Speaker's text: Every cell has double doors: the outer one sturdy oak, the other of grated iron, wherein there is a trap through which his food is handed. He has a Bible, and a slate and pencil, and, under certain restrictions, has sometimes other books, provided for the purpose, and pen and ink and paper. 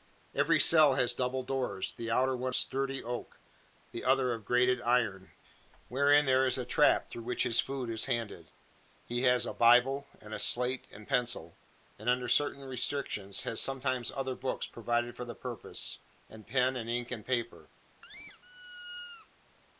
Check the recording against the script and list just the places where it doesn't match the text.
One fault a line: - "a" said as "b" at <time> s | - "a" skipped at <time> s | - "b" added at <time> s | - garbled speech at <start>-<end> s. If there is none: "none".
none